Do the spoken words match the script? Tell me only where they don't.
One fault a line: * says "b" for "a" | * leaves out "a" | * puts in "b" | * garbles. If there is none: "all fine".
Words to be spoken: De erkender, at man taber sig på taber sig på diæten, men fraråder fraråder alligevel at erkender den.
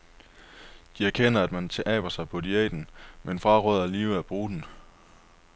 * leaves out "taber sig på"
* leaves out "fraråder"
* says "bruge" for "erkender"